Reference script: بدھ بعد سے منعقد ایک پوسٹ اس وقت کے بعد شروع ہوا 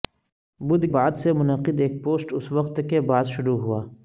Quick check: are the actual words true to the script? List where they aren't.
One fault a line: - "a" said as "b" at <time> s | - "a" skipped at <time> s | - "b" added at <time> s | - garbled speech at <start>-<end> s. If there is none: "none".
none